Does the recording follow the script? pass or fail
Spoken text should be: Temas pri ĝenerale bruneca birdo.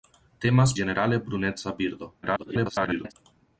fail